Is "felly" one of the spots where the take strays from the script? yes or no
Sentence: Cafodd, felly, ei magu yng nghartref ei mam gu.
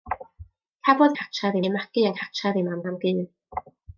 yes